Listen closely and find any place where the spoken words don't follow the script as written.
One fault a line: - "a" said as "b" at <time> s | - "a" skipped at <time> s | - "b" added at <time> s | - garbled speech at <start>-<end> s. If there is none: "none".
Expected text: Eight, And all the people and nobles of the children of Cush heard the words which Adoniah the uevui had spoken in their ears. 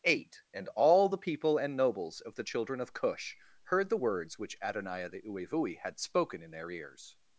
none